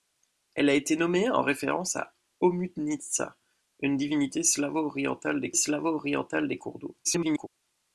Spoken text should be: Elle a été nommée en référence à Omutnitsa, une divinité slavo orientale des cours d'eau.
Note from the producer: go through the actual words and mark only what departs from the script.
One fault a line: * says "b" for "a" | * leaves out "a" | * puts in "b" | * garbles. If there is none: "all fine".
* puts in "slavo orientale des"
* garbles